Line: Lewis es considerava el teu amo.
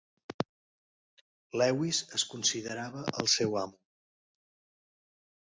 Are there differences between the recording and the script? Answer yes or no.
yes